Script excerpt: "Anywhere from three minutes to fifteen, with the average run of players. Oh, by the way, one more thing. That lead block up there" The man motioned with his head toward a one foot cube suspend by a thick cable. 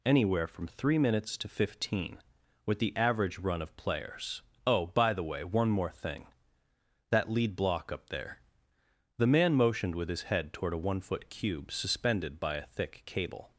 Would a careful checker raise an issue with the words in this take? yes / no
yes